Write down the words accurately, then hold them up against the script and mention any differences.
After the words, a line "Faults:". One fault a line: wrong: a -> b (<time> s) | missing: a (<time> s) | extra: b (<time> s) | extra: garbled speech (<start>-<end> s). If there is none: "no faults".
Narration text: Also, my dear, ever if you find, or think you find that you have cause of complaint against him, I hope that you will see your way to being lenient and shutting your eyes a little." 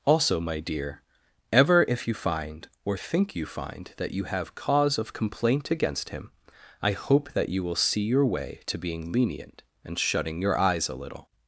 Also, my dear, ever if you find, or think you find that you have cause of complaint against him, I hope that you will see your way to being lenient and shutting your eyes a little."
Faults:
no faults